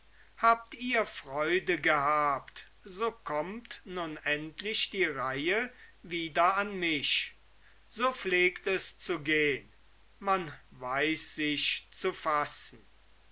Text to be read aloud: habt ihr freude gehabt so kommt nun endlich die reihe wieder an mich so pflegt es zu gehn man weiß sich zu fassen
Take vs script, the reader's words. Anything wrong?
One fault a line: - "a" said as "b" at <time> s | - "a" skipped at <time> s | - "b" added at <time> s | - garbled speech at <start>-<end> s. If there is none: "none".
none